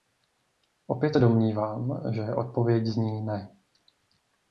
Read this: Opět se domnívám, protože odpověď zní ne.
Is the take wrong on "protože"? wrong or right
wrong